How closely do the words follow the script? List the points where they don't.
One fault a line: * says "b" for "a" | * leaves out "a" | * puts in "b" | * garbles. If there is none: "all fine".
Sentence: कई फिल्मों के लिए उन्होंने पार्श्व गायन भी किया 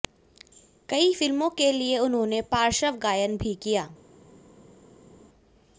all fine